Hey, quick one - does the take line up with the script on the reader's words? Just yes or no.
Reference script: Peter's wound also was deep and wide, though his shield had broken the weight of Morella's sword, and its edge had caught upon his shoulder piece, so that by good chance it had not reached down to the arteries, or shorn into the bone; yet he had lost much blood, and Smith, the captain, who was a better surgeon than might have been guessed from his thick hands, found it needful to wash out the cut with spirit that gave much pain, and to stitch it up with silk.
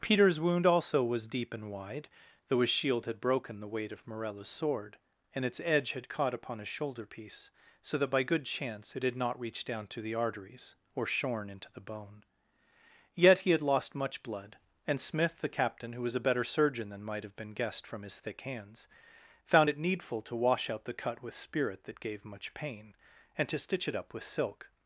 yes